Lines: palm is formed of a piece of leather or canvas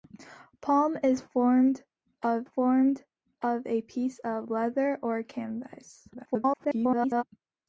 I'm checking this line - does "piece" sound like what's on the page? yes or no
yes